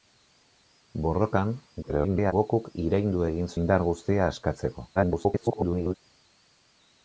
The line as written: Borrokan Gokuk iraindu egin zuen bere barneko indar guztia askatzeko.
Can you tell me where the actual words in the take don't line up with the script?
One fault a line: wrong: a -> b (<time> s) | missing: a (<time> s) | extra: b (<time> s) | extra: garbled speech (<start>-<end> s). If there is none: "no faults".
extra: garbled speech (1.8-2.3 s)
missing: zuen bere barneko (3.5 s)
extra: garbled speech (5.0-5.9 s)